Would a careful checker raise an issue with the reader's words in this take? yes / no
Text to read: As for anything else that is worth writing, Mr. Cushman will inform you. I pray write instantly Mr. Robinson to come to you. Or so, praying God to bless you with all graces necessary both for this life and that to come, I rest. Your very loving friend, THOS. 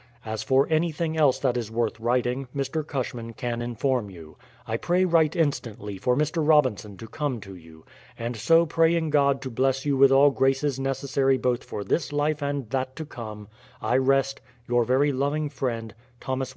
yes